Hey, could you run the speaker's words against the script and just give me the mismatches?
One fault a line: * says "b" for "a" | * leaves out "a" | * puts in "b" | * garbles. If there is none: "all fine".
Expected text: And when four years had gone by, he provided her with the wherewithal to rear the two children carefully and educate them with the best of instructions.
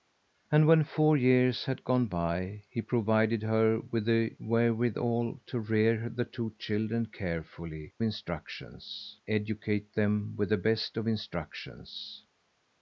* says "instructions" for "and"